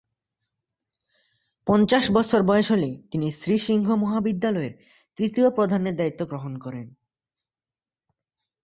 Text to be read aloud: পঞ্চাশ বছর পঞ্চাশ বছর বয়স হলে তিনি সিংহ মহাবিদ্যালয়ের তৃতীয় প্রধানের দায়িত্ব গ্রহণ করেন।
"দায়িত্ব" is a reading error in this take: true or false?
false